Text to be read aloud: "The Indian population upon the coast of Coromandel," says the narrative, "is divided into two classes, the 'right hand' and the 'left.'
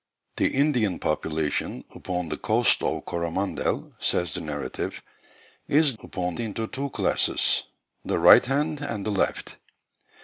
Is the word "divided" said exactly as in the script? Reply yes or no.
no